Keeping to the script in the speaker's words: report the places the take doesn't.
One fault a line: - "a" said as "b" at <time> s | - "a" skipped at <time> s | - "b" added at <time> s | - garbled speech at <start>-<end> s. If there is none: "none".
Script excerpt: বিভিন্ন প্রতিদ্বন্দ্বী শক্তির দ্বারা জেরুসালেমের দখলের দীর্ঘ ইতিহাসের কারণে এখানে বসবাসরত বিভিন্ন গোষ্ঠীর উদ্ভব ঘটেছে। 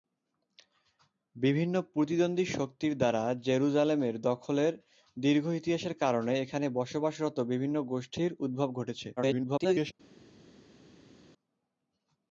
- garbled speech at 9.2-9.9 s